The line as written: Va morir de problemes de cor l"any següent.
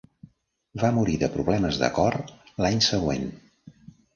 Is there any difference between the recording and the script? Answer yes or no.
no